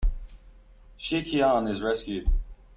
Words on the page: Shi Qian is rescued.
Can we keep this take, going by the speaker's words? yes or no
yes